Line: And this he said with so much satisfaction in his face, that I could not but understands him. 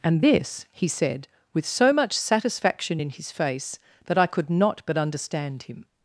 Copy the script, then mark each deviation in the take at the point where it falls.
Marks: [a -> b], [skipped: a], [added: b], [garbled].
And this he said with so much satisfaction in his face, that I could not but [understands -> understand] him.